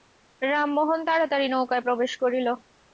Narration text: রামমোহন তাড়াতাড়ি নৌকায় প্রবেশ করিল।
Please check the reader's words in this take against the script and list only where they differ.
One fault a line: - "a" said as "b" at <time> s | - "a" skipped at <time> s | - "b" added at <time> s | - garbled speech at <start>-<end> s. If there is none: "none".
none